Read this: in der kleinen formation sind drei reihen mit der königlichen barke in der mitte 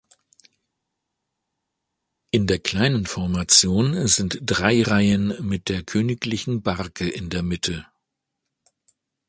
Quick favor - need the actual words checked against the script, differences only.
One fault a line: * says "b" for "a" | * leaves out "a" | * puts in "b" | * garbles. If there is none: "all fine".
all fine